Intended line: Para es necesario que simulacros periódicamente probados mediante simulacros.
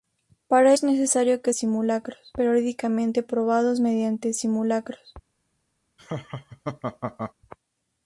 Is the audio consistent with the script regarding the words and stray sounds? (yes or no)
no